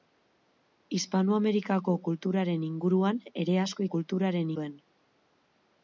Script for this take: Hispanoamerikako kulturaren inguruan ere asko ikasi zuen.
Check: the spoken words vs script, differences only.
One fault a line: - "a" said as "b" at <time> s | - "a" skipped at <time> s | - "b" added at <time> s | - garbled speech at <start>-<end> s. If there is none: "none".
- "ikasi" said as "kulturaren" at 4.0 s